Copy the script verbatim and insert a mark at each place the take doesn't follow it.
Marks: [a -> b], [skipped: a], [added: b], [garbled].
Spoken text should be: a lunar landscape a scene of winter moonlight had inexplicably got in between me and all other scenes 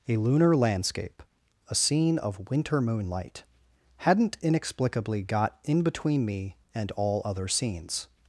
a lunar landscape a scene of winter moonlight [had -> hadn't] inexplicably got in between me and all other scenes